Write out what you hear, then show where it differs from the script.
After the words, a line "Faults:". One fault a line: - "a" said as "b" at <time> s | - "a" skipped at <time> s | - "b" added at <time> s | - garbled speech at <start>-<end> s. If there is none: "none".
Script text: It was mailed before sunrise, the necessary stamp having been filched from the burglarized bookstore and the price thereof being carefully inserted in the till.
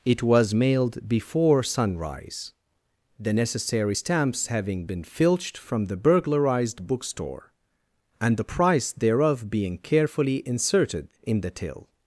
It was mailed before sunrise, the necessary stamps having been filched from the burglarized bookstore and the price thereof being carefully inserted in the till.
Faults:
- "stamp" said as "stamps" at 3.9 s